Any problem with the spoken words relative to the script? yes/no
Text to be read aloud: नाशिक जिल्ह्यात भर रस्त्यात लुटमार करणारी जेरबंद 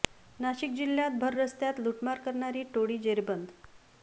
yes